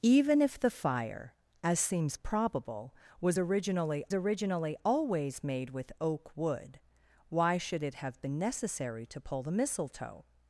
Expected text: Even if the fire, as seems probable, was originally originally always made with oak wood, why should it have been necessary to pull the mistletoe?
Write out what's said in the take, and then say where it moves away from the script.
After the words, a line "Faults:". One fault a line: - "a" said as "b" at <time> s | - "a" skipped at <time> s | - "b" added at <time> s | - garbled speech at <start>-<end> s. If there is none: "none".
Even if the fire, as seems probable, was originally originally always made with oak wood, why should it have been necessary to pull the mistletoe?
Faults:
none